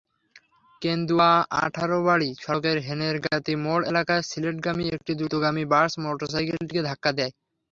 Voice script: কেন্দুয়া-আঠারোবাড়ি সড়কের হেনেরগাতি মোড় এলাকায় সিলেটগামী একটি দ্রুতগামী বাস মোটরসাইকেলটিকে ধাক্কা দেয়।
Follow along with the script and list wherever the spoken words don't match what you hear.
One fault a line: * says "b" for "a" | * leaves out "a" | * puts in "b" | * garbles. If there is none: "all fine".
all fine